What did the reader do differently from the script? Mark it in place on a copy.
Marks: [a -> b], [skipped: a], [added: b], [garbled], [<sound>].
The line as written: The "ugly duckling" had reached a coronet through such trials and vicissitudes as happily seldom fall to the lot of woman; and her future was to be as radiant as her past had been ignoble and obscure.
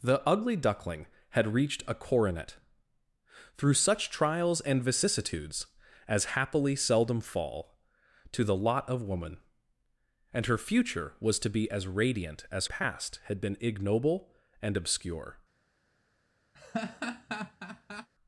The "ugly duckling" had reached a coronet through such trials and vicissitudes as happily seldom fall to the lot of woman; and her future was to be as radiant as [skipped: her] past had been ignoble and obscure. [laugh]